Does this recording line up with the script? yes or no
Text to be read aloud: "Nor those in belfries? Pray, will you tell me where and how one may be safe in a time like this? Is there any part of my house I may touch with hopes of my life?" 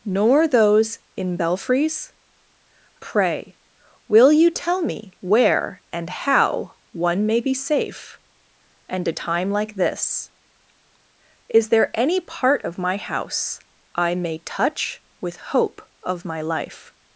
no